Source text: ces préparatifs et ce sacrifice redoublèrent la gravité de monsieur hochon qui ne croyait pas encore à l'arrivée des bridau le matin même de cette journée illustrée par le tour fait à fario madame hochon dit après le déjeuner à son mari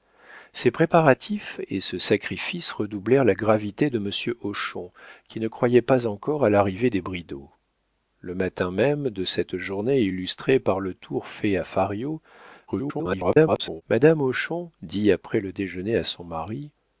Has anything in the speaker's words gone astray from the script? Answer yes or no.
yes